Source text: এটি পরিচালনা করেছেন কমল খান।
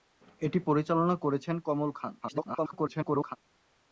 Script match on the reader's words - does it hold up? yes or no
no